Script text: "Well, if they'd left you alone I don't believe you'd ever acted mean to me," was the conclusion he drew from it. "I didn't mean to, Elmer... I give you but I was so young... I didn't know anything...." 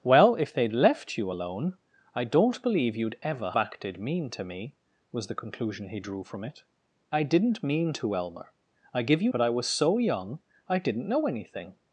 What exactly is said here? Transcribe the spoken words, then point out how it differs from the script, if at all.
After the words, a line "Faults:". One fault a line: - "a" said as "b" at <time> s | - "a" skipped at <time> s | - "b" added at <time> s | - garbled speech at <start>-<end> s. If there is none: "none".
"Well, if they'd left you alone I don't believe you'd ever acted mean to me," was the conclusion he drew from it. "I didn't mean to, Elmer... I give you but I was so young... I didn't know anything...."
Faults:
none